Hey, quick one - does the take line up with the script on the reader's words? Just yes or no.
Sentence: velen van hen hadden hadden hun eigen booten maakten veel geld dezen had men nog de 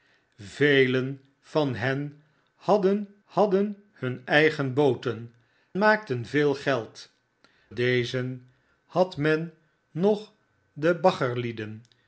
yes